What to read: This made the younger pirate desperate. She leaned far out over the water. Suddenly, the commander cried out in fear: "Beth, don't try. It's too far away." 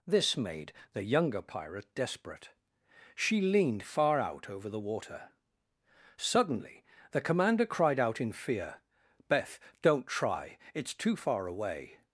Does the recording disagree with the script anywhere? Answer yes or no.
no